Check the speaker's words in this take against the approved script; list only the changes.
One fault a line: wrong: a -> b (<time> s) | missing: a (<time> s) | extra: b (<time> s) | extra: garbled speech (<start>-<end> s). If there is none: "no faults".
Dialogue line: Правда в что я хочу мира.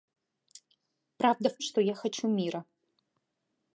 no faults